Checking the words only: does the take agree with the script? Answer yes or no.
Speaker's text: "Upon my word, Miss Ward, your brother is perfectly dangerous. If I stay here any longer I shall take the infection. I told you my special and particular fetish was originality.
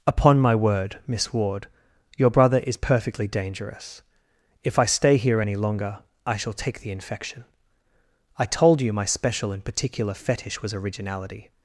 yes